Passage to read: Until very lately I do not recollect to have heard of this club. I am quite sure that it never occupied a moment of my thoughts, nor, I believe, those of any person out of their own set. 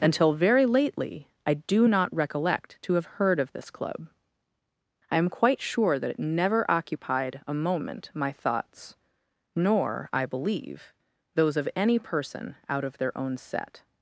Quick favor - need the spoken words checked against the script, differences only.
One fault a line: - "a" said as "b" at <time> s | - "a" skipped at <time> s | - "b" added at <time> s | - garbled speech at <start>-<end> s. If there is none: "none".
- "of" skipped at 8.1 s